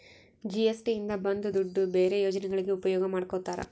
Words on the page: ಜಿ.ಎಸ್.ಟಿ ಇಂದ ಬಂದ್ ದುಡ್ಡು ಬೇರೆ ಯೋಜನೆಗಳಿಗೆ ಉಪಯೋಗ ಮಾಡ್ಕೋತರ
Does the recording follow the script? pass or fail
pass